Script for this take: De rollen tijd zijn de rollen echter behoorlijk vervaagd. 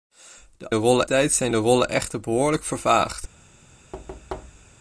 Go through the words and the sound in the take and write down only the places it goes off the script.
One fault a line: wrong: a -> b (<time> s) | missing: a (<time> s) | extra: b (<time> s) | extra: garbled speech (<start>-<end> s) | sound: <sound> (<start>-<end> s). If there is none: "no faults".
sound: thud (3.9-4.7 s)